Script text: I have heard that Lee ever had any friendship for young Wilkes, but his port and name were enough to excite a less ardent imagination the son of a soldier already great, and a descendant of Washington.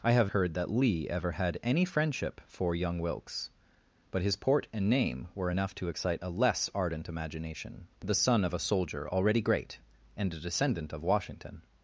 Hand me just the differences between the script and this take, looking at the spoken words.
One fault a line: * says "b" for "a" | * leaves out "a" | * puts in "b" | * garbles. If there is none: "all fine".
all fine